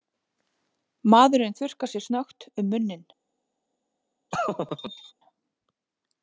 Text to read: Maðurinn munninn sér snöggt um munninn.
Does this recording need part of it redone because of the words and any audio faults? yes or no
yes